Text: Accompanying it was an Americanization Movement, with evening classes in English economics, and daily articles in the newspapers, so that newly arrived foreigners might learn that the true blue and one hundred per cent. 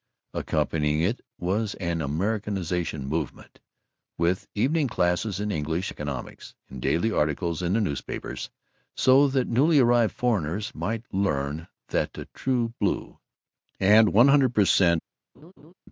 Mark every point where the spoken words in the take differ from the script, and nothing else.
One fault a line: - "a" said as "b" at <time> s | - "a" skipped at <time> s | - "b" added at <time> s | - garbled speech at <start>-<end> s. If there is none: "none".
none